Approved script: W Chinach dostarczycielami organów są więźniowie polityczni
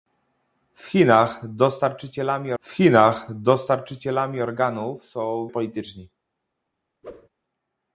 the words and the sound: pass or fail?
fail